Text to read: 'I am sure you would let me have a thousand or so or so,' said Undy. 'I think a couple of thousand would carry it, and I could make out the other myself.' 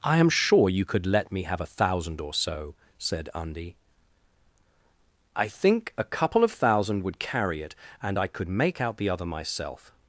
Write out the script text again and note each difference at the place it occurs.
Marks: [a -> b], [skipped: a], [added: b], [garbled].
'I am sure you [would -> could] let me have a thousand or so [skipped: or so,'] said Undy. 'I think a couple of thousand would carry it, and I could make out the other myself.'